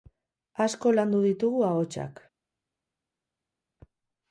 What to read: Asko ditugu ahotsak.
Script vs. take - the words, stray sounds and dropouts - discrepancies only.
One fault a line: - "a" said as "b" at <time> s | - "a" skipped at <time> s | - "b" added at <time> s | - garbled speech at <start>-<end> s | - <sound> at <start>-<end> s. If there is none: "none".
- "landu" added at 0.9 s